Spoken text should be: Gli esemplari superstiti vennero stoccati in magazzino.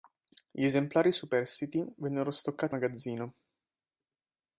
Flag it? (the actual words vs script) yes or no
yes